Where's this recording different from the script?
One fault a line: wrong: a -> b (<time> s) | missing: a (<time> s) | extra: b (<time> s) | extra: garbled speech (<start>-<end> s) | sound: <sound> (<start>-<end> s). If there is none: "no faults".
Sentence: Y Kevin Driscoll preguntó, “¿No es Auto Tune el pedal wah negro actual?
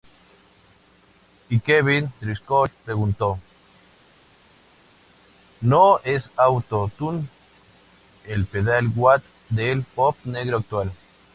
extra: del pop (9.5 s)